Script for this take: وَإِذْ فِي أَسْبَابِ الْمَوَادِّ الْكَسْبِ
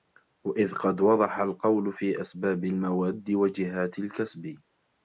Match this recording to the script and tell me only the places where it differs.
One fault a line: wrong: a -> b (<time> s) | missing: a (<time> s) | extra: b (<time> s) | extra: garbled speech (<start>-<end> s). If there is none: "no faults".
extra: قَدْ وَضَحَ الْقَوْلُ (0.7 s)
extra: وَجِهَاتِ (3.3 s)